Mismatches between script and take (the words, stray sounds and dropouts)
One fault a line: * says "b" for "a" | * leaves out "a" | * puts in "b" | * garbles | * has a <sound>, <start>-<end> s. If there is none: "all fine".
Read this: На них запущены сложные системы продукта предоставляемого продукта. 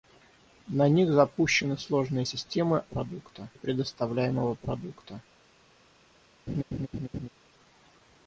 * has a laugh, 6.5-7.3 s